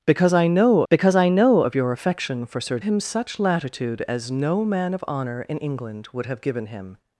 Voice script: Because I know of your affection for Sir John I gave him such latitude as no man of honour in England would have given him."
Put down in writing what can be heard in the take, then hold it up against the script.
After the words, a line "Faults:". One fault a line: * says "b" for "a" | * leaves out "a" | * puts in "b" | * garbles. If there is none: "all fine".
Because I know because I know of your affection for Sir Him such latitude as no man of honour in England would have given him."
Faults:
* puts in "because I know"
* leaves out "John I gave"